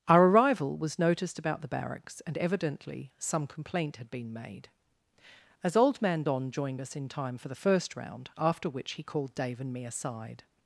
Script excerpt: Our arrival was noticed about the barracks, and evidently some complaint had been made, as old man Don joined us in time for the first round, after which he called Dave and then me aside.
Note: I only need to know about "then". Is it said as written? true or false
false